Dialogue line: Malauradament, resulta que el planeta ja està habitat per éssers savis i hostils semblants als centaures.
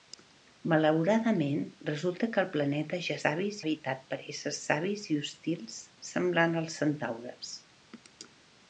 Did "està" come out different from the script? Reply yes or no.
yes